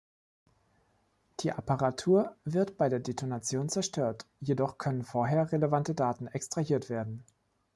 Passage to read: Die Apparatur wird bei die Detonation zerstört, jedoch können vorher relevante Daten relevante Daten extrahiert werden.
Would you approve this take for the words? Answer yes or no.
no